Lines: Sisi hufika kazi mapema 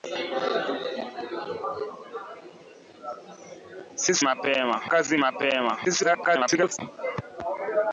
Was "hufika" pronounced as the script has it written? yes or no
no